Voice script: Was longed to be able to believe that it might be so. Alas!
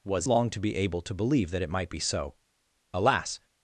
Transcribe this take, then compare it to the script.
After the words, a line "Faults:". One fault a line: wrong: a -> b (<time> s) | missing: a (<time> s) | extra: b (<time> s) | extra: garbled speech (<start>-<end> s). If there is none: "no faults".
Was longed to be able to believe that it might be so. Alas!
Faults:
no faults